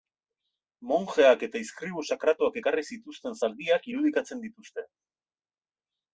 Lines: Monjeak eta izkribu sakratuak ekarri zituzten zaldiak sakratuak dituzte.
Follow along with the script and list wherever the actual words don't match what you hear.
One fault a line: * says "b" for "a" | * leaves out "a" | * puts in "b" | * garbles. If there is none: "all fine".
* says "irudikatzen" for "sakratuak"